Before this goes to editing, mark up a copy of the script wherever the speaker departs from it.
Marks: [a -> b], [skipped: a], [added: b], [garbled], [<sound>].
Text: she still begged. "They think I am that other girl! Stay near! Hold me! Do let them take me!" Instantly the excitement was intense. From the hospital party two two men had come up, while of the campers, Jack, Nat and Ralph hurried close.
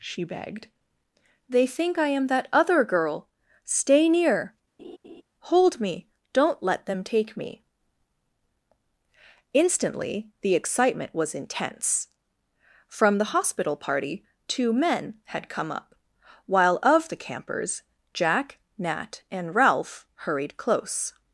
she [skipped: still] begged. "They think I am that other girl! Stay near! [laugh] Hold me! [Do -> Don't] let them take me!" Instantly the excitement was intense. From the hospital party two [skipped: two] men had come up, while of the campers, Jack, Nat and Ralph hurried close.